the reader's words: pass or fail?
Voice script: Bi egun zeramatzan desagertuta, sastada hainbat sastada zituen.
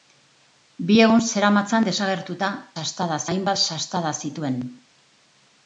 pass